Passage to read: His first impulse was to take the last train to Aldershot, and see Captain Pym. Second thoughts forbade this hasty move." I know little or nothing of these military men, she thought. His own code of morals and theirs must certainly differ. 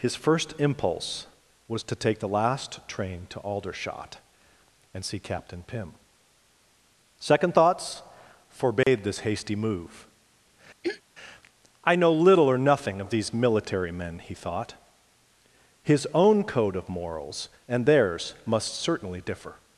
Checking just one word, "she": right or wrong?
wrong